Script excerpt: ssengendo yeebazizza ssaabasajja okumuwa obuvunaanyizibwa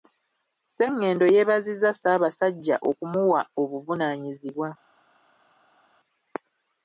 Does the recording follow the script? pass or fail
pass